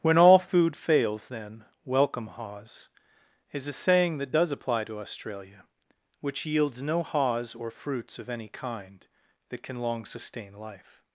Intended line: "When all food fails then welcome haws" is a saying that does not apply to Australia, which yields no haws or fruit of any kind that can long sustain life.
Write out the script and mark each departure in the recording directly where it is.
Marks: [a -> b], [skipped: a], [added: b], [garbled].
"When all food fails then welcome haws" is a saying that does [skipped: not] apply to Australia, which yields no haws or [fruit -> fruits] of any kind that can long sustain life.